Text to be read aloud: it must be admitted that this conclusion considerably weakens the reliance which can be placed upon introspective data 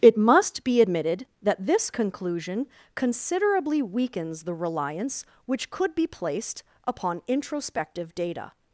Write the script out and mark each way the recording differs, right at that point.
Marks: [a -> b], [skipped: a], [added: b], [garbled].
it must be admitted that this conclusion considerably weakens the reliance which [can -> could] be placed upon introspective data